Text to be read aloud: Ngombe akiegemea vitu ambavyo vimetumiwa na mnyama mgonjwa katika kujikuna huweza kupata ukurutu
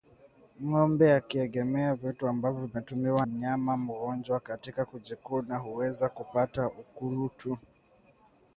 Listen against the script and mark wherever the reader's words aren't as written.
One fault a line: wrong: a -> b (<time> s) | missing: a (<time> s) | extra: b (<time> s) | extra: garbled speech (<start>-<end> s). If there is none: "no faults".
missing: na (3.2 s)